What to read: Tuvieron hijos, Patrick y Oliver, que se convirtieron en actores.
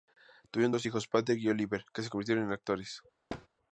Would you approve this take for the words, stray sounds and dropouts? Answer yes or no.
no